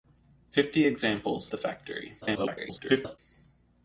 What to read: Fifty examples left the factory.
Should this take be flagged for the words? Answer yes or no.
yes